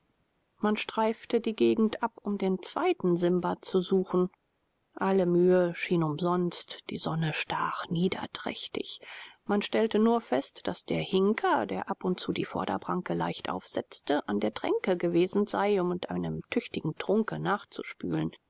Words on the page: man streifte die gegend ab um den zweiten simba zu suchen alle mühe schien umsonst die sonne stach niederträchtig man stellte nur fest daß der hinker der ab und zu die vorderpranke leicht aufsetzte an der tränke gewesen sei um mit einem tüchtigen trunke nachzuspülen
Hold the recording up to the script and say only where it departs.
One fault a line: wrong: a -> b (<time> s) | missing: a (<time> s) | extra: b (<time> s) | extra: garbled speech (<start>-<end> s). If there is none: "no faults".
no faults